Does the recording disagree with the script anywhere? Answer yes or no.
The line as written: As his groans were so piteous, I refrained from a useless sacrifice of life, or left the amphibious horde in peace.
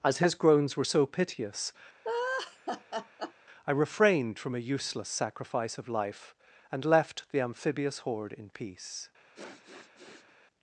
yes